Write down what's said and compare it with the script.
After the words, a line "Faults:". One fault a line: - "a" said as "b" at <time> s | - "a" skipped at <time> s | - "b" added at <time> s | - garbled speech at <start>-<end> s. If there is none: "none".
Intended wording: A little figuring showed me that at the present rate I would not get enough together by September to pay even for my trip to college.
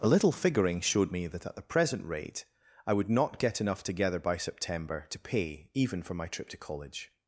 A little figuring showed me that at the present rate I would not get enough together by September to pay even for my trip to college.
Faults:
none